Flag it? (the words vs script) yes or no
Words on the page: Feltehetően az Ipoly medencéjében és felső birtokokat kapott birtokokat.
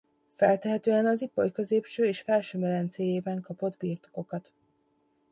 yes